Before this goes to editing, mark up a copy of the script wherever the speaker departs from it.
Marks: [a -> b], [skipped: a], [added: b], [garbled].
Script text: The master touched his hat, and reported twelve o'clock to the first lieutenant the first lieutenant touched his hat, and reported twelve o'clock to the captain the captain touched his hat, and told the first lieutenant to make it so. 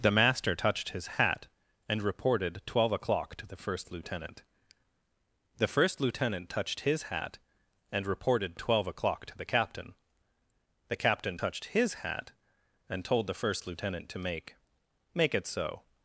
The master touched his hat, and reported twelve o'clock to the first lieutenant the first lieutenant touched his hat, and reported twelve o'clock to the captain the captain touched his hat, and told the first lieutenant to make [added: make] it so.